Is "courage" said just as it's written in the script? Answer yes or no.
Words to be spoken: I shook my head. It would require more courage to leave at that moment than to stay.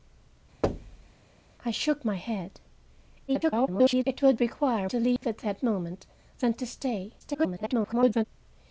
no